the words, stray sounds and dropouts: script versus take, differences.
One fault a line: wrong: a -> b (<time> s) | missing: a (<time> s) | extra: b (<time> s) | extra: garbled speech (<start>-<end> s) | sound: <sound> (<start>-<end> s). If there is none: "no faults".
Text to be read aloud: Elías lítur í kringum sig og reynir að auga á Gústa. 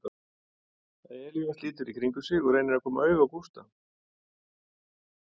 extra: koma (2.9 s)